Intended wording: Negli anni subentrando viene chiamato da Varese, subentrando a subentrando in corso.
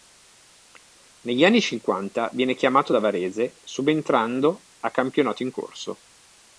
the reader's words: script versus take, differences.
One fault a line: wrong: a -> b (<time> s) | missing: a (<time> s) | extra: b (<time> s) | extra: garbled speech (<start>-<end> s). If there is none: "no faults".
wrong: subentrando -> cinquanta (1.6 s)
wrong: subentrando -> campionato (4.9 s)